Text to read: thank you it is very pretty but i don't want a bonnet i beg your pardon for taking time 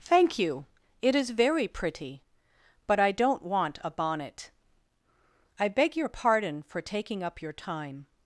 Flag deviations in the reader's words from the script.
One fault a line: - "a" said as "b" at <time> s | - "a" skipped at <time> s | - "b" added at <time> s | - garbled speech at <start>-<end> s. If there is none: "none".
- "up your" added at 7.2 s